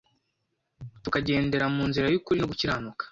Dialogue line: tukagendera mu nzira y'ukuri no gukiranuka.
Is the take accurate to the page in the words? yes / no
yes